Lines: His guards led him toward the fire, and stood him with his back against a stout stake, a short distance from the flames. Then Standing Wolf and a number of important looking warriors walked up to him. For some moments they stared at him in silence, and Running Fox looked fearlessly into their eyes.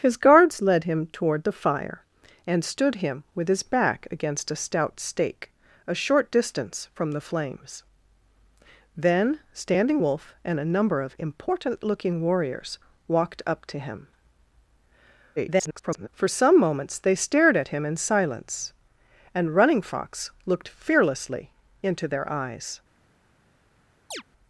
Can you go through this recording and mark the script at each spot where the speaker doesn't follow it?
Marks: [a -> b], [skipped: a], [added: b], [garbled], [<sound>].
His guards led him toward the fire, and stood him with his back against a stout stake, a short distance from the flames. Then Standing Wolf and a number of important looking warriors walked up to him. [garbled] For some moments they stared at him in silence, and Running Fox looked fearlessly into their eyes. [chirp]